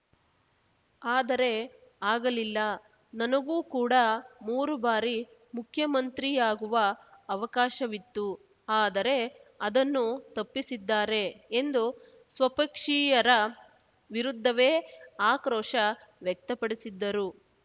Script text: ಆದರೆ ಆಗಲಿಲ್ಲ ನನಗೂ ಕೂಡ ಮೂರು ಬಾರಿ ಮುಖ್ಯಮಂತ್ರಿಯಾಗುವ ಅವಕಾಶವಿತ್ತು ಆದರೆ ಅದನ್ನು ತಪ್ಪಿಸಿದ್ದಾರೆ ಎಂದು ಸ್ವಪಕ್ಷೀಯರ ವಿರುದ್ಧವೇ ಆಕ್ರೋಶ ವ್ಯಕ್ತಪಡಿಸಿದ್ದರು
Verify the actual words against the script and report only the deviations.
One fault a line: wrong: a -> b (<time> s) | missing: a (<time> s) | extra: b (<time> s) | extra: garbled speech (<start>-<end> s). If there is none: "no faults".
no faults